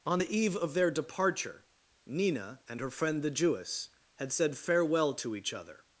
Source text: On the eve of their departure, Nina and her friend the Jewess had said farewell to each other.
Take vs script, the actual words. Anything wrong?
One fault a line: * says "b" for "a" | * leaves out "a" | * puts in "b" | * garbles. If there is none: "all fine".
all fine